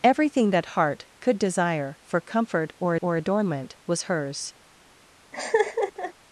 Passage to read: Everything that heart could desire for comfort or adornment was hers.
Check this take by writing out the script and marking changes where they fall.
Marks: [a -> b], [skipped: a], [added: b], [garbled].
Everything that heart could desire for comfort or [added: or] adornment was hers.